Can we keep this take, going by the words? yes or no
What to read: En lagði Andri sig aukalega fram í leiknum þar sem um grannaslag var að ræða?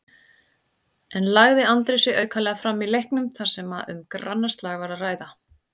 yes